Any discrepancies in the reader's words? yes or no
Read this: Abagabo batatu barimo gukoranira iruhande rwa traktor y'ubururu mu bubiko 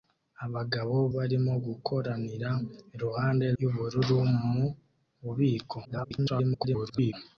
yes